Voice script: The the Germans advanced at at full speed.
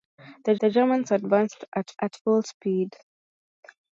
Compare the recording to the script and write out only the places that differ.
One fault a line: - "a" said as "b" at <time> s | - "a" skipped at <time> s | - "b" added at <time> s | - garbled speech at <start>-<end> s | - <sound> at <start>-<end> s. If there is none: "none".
none